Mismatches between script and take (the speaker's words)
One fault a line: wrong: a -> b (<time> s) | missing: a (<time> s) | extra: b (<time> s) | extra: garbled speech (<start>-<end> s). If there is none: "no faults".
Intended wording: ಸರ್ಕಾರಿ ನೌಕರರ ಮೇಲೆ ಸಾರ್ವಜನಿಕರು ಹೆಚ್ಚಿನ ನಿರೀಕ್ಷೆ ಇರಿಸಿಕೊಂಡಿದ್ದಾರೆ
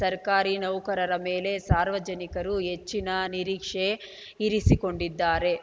no faults